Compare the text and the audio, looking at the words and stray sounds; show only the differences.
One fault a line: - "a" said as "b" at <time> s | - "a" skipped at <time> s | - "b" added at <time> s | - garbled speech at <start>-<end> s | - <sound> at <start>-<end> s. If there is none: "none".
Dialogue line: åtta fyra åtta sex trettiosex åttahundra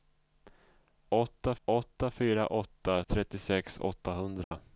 - "åtta" added at 1.7 s
- "sex" skipped at 3.0 s
- dropout at 4.4-4.5 s